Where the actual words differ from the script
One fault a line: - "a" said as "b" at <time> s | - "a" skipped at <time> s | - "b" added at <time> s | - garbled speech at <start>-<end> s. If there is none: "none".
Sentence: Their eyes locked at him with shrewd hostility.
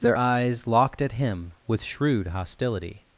none